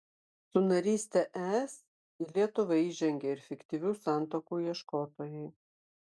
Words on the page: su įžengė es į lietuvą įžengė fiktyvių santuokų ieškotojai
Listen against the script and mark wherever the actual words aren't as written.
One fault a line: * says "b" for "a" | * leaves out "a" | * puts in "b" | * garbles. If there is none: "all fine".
* says "naryste" for "įžengė"
* puts in "ir"